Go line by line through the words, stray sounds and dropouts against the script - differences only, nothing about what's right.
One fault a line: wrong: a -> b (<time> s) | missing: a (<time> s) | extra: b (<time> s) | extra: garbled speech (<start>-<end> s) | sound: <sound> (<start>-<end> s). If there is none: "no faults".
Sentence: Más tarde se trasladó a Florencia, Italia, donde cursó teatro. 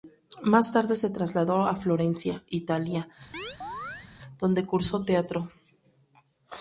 sound: chirp (3.3-4.1 s)